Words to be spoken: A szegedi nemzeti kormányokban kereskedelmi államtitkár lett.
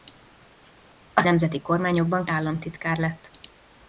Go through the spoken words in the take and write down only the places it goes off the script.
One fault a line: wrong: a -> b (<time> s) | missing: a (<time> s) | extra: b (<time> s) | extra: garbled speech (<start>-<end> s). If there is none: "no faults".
missing: szegedi (1.2 s)
missing: kereskedelmi (2.3 s)